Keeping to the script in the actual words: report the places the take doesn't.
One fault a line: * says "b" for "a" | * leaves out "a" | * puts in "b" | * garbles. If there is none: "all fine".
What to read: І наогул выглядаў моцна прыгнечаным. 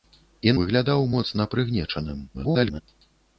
* leaves out "наогул"
* garbles